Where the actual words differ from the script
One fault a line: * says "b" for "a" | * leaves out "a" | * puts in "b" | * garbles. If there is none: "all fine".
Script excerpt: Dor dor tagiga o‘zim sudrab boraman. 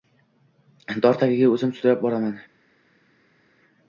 * leaves out "dor"